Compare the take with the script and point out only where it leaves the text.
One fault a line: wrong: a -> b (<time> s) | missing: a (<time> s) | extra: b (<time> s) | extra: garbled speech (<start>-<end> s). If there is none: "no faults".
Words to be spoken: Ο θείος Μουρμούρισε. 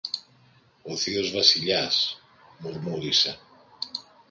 extra: Βασιλιάς (1.3 s)